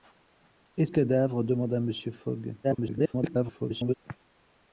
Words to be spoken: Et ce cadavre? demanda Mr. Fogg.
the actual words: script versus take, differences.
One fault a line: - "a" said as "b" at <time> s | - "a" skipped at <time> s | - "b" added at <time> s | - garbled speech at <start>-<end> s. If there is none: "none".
- "ce" skipped at 0.9 s
- garbled speech at 2.6-3.9 s